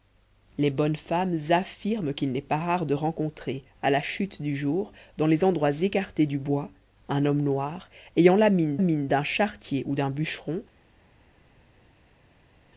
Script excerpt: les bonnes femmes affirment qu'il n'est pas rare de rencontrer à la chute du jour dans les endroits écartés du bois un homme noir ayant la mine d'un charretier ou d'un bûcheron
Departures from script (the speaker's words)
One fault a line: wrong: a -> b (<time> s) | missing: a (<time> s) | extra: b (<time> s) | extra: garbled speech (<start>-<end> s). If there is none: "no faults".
extra: mine (8.8 s)